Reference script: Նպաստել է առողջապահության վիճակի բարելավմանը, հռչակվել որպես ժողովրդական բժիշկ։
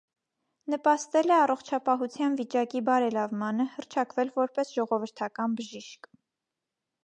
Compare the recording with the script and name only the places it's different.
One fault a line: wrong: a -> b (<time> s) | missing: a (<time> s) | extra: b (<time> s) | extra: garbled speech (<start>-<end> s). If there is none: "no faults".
no faults